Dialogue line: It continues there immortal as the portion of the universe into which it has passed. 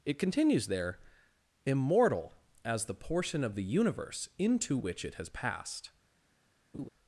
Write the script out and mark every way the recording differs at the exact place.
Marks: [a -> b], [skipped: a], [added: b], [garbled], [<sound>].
It continues there immortal as the portion of the universe into which it has passed. [laugh]